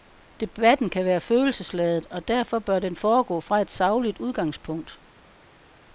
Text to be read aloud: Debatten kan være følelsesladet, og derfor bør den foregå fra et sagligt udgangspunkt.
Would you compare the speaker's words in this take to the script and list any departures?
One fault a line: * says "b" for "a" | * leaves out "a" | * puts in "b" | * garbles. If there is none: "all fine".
all fine